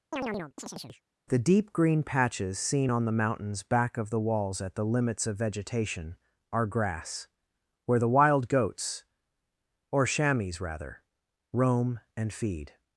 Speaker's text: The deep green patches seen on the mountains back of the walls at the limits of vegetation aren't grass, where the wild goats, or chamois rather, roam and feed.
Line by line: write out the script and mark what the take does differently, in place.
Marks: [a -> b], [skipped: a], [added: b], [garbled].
The deep green patches seen on the mountains back of the walls at the limits of vegetation [aren't -> are] grass, where the wild goats, or chamois rather, roam and feed.